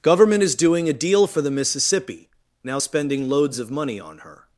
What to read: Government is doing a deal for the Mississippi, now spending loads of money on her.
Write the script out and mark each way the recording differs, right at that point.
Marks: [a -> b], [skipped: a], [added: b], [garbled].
Government is doing a deal for the Mississippi, now spending loads of money on her.